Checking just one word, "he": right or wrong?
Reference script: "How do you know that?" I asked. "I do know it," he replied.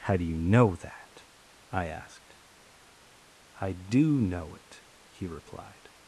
right